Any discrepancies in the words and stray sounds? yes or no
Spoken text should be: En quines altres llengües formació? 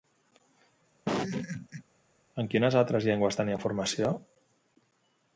yes